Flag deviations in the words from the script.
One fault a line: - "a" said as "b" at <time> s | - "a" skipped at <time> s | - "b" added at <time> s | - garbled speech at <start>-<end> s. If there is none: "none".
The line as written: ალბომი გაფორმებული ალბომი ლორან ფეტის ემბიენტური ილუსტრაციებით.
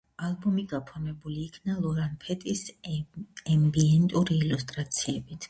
- "ალბომი" said as "იქნა" at 1.5 s